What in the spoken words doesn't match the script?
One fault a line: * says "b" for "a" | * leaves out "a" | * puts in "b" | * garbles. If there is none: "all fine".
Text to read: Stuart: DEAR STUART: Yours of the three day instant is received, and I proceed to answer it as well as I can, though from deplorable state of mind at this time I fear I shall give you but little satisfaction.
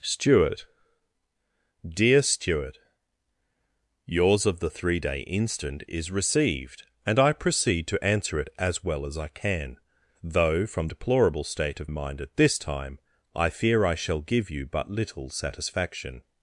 all fine